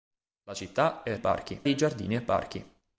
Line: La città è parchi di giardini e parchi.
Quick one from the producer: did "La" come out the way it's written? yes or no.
yes